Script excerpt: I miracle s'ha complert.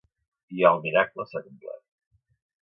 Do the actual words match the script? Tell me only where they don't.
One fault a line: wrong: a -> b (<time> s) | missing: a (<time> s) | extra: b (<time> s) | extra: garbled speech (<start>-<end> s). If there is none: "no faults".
extra: el (0.7 s)